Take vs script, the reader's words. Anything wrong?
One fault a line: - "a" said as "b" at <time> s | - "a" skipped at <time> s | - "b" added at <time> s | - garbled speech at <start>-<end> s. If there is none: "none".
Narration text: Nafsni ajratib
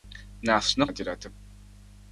none